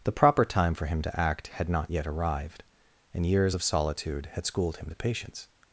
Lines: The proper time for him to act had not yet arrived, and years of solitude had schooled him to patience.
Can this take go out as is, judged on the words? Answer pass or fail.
pass